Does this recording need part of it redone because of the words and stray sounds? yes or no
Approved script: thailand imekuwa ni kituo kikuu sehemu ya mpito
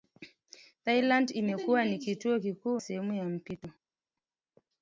no